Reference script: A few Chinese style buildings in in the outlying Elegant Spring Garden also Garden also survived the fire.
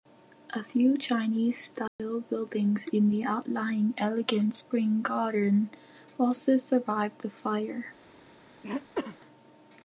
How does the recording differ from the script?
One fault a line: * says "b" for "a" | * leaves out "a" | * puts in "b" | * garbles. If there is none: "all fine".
* leaves out "in"
* leaves out "Garden also"